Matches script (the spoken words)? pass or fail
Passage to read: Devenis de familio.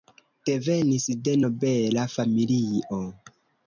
fail